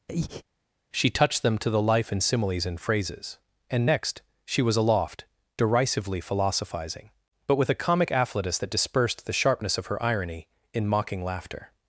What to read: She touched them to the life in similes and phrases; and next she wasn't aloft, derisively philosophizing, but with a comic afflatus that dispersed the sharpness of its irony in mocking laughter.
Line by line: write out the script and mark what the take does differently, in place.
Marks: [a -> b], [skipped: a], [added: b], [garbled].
She touched them to the life in similes and phrases; and next she [wasn't -> was] aloft, derisively philosophizing, but with a comic afflatus that dispersed the sharpness of [its -> her] irony in mocking laughter.